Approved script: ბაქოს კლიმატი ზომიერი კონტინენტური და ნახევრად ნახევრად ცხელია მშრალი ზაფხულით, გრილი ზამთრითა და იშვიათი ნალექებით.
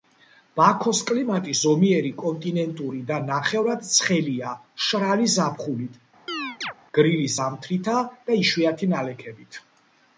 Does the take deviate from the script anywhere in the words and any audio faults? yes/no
yes